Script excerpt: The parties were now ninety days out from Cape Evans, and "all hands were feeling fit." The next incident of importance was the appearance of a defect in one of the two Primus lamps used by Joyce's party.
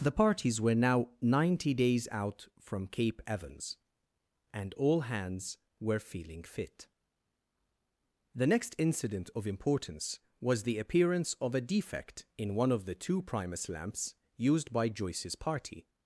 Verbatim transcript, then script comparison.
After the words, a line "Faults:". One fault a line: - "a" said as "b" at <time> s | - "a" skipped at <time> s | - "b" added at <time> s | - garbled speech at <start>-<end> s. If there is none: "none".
The parties were now ninety days out from Cape Evans, and "all hands were feeling fit." The next incident of importance was the appearance of a defect in one of the two Primus lamps used by Joyce's party.
Faults:
none